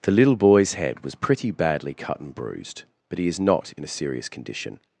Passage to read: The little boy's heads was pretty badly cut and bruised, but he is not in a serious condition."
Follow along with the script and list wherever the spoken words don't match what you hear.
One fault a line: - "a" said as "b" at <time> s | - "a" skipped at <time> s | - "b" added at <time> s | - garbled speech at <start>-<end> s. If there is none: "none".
- "heads" said as "head" at 0.7 s